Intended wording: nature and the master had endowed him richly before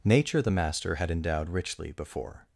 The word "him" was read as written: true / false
false